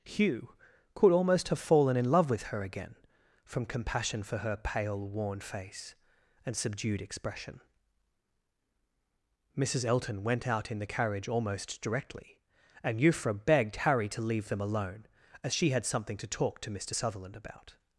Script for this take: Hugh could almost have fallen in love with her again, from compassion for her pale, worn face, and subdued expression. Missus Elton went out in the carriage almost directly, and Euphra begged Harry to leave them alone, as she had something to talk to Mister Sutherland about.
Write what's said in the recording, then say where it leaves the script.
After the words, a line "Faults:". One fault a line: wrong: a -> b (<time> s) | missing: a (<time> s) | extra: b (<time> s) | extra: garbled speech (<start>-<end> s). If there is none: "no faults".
Hugh could almost have fallen in love with her again, from compassion for her pale, worn face, and subdued expression. Missus Elton went out in the carriage almost directly, and Euphra begged Harry to leave them alone, as she had something to talk to Mister Sutherland about.
Faults:
no faults